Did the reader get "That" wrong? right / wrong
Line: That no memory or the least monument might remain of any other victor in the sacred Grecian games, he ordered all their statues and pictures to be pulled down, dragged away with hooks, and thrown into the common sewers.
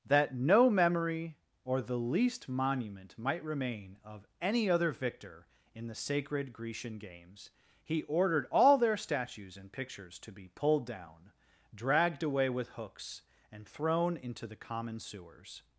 right